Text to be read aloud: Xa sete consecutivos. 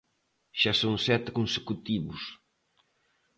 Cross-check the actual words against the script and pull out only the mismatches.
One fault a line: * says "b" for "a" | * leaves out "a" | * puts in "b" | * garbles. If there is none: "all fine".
* puts in "son"